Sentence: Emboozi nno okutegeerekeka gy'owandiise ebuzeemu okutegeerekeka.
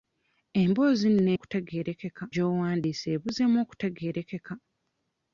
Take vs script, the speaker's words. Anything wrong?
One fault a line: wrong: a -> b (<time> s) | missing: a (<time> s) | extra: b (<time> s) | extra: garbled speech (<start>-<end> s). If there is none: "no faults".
no faults